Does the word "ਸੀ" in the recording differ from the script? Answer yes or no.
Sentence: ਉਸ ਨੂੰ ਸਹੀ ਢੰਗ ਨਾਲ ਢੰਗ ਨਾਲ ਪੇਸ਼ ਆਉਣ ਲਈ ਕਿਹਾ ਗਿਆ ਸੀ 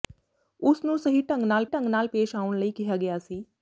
no